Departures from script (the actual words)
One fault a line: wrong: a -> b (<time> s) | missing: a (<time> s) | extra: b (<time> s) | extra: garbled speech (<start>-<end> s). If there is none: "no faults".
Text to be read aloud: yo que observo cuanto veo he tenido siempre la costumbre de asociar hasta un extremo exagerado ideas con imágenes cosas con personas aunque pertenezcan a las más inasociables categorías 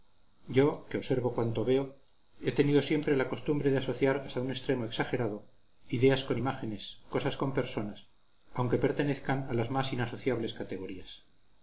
no faults